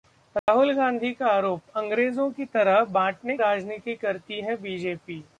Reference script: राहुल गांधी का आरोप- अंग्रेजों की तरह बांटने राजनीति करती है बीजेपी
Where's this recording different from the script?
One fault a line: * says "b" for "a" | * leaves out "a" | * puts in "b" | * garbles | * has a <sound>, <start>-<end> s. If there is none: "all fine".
* has a dropout, 0.4-0.5 s